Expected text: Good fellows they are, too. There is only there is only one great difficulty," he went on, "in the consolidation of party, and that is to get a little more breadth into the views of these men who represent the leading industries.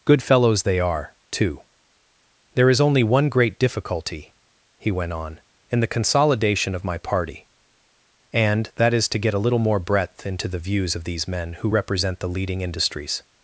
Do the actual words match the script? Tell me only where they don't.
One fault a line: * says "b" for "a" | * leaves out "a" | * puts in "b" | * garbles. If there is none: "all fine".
* leaves out "there is only"
* puts in "my"